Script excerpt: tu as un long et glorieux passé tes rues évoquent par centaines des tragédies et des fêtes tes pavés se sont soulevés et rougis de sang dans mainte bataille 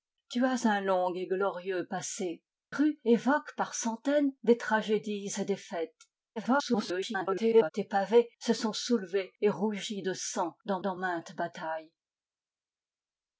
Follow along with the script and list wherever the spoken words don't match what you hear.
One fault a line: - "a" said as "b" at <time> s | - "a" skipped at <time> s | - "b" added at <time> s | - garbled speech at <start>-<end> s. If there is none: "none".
- "tes" skipped at 2.4 s
- garbled speech at 6.4-7.7 s
- "dans" added at 10.8 s